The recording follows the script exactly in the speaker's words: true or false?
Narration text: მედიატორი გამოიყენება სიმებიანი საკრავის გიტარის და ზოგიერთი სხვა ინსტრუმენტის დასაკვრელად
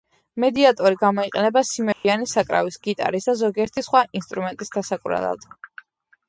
true